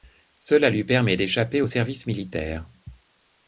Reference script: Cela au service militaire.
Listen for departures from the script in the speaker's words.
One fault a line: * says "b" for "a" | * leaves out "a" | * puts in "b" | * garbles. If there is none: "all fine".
* puts in "lui permet d'échapper"